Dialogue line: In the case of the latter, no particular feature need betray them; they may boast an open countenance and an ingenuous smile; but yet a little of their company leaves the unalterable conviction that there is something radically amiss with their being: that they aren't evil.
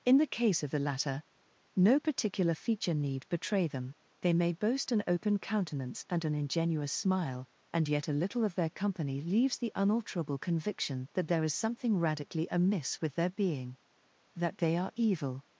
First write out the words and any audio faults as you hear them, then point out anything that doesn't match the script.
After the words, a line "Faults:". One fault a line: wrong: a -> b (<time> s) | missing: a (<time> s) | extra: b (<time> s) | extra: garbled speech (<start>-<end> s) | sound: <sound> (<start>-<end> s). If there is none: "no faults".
In the case of the latter, no particular feature need betray them; they may boast an open countenance and an ingenuous smile; and yet a little of their company leaves the unalterable conviction that there is something radically amiss with their being: that they are evil.
Faults:
wrong: but -> and (7.7 s)
wrong: aren't -> are (14.8 s)